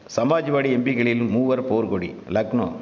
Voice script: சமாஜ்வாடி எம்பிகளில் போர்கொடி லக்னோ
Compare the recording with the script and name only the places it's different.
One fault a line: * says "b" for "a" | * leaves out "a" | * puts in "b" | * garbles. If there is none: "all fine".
* puts in "மூவர்"